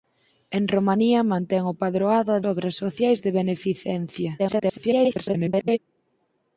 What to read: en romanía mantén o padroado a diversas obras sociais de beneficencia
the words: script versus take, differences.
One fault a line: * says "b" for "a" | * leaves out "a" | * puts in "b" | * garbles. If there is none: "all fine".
* leaves out "diversas"
* garbles